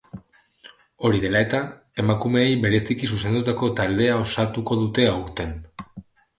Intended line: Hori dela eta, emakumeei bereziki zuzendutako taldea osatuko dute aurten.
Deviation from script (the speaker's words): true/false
false